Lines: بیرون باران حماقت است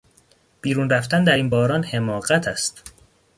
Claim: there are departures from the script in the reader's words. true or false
true